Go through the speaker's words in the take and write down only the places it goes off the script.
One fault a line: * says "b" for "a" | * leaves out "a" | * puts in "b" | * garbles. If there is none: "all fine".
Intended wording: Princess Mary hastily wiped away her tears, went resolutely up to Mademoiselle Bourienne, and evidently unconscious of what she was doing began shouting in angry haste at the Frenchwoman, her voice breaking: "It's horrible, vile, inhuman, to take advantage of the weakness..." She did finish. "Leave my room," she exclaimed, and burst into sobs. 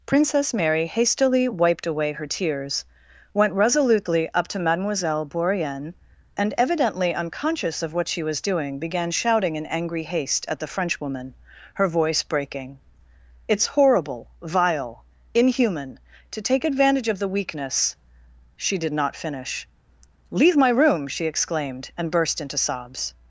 * puts in "not"